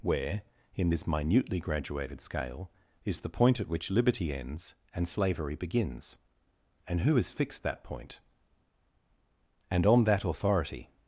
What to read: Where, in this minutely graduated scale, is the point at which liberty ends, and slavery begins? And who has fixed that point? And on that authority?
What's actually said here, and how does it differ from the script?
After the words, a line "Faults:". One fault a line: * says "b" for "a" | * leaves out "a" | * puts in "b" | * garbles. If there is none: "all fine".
Where, in this minutely graduated scale, is the point at which liberty ends, and slavery begins? And who has fixed that point? And on that authority?
Faults:
all fine